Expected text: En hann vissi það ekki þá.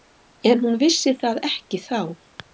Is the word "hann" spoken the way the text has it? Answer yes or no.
no